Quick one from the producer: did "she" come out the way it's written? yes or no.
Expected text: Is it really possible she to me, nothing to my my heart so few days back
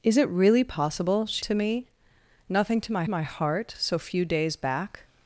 yes